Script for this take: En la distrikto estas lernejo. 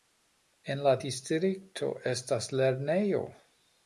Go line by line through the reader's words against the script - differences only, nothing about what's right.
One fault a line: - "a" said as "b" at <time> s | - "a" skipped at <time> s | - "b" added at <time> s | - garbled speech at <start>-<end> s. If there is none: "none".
none